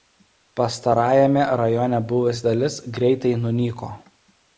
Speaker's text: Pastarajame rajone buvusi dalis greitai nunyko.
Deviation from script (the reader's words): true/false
false